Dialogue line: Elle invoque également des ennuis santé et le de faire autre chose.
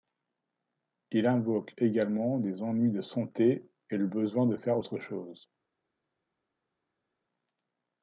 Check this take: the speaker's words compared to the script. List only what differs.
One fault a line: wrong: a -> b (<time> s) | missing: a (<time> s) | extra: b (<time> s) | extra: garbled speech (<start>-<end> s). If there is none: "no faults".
wrong: Elle -> Il (1.1 s)
extra: de (2.9 s)
extra: besoin (4.0 s)